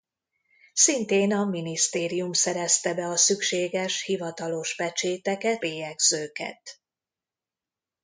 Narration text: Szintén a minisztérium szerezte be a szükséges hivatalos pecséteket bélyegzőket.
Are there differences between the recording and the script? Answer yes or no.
no